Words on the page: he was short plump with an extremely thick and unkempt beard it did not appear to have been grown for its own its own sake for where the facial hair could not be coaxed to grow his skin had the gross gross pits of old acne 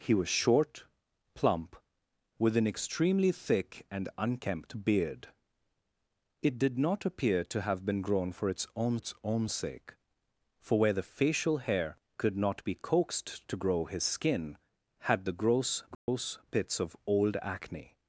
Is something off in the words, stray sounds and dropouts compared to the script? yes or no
yes